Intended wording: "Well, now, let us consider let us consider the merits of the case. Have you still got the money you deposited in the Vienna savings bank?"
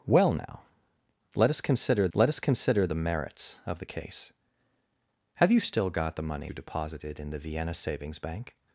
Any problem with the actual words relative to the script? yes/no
no